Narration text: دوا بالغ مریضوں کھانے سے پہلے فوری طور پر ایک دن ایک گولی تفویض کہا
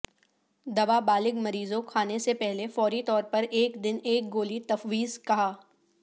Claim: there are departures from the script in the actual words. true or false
false